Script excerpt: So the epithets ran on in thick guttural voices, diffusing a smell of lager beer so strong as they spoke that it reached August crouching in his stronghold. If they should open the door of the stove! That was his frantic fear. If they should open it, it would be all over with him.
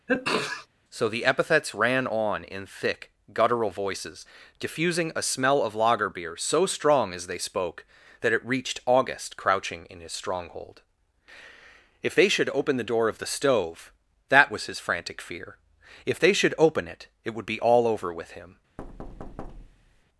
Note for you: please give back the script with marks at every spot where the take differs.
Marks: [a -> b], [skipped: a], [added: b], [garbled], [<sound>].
[sneeze] So the epithets ran on in thick guttural voices, diffusing a smell of lager beer so strong as they spoke that it reached August crouching in his stronghold. If they should open the door of the stove! That was his frantic fear. If they should open it, it would be all over with him. [thud]